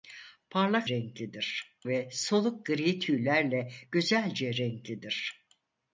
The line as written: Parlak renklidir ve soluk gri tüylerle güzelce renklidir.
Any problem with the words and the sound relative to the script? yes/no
no